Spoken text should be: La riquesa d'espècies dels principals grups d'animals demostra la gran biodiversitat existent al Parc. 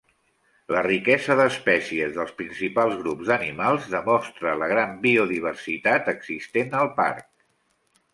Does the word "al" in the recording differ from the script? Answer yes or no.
no